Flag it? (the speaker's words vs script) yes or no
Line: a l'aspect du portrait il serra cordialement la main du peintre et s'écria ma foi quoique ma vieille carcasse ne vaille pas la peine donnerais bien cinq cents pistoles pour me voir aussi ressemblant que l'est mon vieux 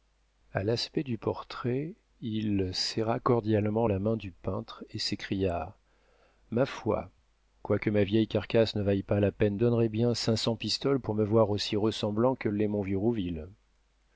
no